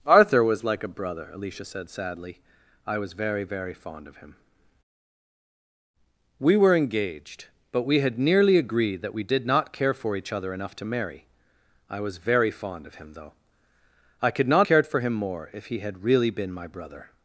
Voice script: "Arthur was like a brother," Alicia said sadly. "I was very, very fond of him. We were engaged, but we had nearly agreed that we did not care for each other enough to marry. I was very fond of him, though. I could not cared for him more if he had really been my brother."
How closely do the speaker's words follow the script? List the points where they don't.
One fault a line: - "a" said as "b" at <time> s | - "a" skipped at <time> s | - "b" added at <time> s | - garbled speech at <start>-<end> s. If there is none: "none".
none